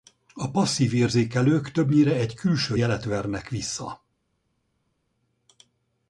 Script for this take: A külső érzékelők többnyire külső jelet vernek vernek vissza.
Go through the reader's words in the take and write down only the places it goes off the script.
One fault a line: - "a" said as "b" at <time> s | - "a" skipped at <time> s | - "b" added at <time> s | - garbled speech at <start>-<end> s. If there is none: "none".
- "külső" said as "passzív" at 0.5 s
- "egy" added at 2.1 s
- "vernek" skipped at 3.5 s